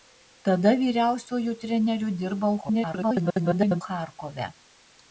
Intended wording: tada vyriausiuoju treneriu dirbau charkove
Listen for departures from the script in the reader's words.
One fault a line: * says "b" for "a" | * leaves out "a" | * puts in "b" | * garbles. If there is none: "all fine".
* garbles